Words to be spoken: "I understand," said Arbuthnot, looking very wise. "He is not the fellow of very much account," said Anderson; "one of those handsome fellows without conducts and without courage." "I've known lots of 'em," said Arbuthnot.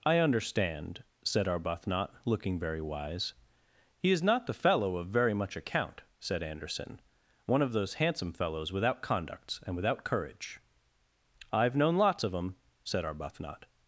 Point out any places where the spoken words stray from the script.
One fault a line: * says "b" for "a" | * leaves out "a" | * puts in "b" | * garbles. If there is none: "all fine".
all fine